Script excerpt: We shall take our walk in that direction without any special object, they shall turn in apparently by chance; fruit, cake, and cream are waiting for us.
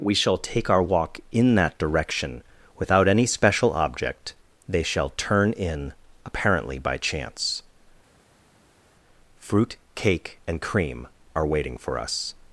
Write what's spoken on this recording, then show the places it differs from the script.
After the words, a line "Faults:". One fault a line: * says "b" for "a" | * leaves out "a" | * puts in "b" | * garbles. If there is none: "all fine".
We shall take our walk in that direction without any special object, they shall turn in apparently by chance; fruit, cake, and cream are waiting for us.
Faults:
all fine